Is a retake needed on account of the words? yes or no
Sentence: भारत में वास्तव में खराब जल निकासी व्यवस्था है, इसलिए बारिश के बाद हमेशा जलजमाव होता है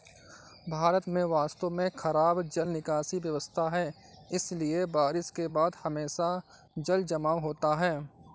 no